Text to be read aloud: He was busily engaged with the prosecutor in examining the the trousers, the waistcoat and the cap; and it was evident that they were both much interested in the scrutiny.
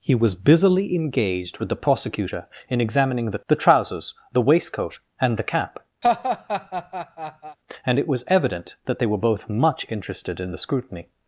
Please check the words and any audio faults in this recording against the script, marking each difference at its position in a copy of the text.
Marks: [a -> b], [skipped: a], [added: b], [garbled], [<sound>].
He was busily engaged with the prosecutor in examining the the trousers, the waistcoat and the cap; [laugh] and it was evident that they were both much interested in the scrutiny.